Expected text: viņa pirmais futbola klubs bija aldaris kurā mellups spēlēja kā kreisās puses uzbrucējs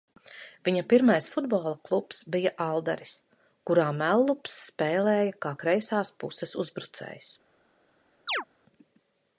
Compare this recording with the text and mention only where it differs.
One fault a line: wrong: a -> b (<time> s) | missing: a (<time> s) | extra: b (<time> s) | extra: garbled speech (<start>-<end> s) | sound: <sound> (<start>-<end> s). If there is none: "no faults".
sound: chirp (8.3-8.4 s)